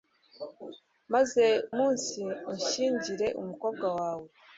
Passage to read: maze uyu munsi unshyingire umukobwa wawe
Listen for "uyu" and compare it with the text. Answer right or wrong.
wrong